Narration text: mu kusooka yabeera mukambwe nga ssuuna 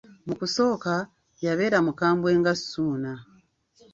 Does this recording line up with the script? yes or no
yes